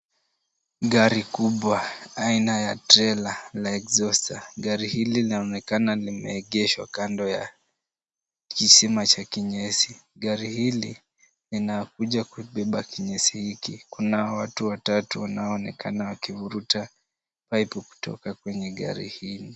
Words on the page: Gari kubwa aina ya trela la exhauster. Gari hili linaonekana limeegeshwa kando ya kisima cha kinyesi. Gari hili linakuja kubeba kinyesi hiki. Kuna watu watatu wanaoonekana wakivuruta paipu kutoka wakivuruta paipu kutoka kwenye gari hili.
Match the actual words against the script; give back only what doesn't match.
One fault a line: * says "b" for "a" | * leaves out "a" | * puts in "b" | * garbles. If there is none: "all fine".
* leaves out "wakivuruta paipu kutoka"